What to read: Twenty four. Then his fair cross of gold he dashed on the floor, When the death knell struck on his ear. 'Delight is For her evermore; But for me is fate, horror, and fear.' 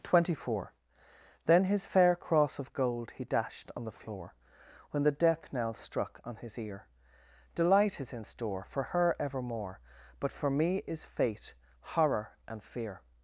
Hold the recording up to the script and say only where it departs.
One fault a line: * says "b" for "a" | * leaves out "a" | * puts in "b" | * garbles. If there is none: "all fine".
* puts in "in store"